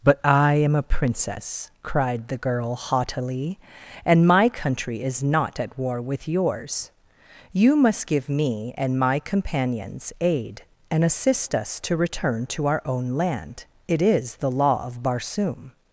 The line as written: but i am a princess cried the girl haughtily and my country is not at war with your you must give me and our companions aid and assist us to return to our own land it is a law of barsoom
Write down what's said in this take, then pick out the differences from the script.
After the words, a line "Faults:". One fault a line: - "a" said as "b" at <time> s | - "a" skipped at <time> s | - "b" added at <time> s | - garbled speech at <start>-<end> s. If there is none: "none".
but i am a princess cried the girl haughtily and my country is not at war with yours you must give me and my companions aid and assist us to return to our own land it is the law of barsoom
Faults:
- "your" said as "yours" at 6.3 s
- "our" said as "my" at 9.0 s
- "a" said as "the" at 14.4 s